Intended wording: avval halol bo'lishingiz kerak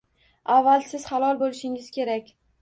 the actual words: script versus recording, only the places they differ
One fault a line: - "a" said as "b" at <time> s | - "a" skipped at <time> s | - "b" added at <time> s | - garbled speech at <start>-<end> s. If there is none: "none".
- "siz" added at 0.9 s